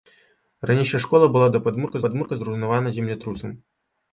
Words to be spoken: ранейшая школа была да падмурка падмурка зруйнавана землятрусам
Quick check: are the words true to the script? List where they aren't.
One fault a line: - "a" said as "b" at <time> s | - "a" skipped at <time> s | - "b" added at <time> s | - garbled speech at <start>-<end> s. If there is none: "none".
none